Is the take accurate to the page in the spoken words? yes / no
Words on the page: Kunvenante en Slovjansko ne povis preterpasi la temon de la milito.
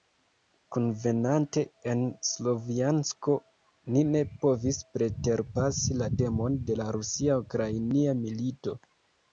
no